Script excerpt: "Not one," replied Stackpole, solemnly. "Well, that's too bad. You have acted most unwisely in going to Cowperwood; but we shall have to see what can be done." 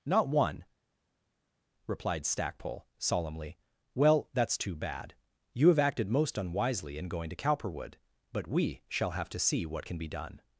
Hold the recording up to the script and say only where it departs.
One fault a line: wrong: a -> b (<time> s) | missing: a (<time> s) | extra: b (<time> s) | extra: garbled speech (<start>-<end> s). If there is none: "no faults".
no faults